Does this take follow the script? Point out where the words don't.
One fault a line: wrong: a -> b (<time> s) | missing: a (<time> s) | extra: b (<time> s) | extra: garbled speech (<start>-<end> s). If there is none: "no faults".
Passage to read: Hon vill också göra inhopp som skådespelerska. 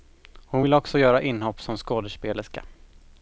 no faults